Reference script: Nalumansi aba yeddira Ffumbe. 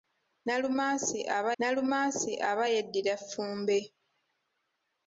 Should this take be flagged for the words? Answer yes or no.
yes